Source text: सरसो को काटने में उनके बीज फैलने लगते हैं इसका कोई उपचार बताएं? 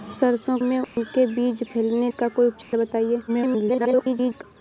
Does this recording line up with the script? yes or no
no